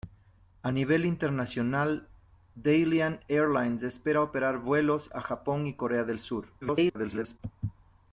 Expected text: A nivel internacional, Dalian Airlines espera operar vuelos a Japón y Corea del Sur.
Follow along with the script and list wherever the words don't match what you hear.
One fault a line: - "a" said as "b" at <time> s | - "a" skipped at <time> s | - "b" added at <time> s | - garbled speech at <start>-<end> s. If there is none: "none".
- garbled speech at 6.6-7.4 s